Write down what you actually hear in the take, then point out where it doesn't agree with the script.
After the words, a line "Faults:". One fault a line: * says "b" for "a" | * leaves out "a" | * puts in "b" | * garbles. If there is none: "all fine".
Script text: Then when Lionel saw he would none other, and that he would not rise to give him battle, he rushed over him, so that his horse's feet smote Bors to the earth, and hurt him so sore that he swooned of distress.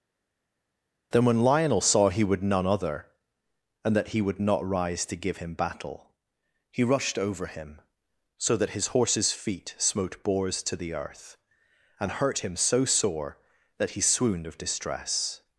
Then when Lionel saw he would none other, and that he would not rise to give him battle, he rushed over him, so that his horse's feet smote Bors to the earth, and hurt him so sore that he swooned of distress.
Faults:
all fine